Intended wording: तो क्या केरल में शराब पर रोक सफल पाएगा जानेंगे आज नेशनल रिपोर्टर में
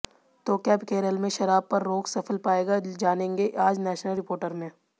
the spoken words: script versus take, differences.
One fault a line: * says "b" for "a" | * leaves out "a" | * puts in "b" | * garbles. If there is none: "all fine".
all fine